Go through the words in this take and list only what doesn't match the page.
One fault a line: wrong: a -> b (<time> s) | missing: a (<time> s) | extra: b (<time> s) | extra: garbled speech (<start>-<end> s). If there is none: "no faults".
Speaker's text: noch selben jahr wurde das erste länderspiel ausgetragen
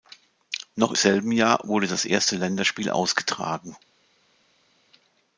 no faults